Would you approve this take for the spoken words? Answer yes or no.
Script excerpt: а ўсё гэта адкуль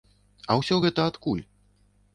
yes